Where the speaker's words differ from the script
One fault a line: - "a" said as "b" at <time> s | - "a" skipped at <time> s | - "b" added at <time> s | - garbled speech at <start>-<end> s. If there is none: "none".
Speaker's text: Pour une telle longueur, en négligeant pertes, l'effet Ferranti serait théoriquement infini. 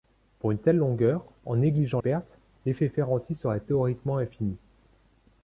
none